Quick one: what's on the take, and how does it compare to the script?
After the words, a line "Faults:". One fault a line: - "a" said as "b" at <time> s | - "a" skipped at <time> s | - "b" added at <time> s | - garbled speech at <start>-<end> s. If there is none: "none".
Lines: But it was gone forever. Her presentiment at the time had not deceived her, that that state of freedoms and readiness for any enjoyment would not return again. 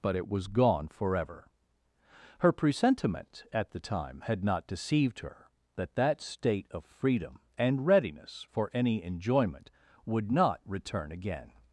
But it was gone forever. Her presentiment at the time had not deceived her, that that state of freedom and readiness for any enjoyment would not return again.
Faults:
- "freedoms" said as "freedom" at 6.8 s